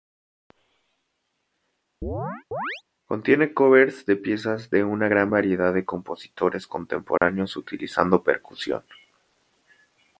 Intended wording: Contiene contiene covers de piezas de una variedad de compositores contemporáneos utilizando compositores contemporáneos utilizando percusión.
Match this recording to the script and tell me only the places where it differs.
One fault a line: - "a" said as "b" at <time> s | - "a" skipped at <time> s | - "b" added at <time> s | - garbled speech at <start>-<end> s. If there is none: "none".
- "contiene" skipped at 3.5 s
- "gran" added at 5.1 s
- "compositores contemporáneos utilizando" skipped at 8.2 s